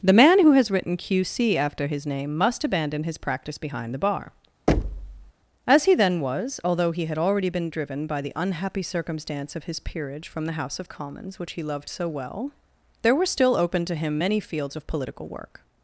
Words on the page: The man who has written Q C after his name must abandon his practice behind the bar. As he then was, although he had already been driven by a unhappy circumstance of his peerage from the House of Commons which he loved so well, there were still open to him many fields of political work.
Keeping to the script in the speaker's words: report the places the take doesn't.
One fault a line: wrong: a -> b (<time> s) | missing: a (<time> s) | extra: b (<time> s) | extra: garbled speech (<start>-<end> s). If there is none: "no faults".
wrong: a -> the (8.2 s)